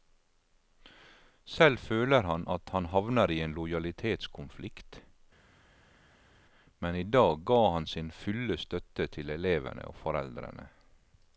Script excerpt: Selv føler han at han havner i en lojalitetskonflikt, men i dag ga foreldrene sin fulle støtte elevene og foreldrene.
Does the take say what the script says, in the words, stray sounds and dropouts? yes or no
no